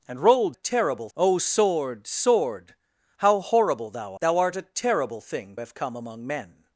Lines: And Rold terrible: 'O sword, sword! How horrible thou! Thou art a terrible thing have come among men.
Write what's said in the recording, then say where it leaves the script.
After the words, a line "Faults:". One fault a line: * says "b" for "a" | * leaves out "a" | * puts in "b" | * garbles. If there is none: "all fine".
And Rold terrible: 'O sword, sword! How horrible thou! Thou art a terrible thing have come among men.
Faults:
all fine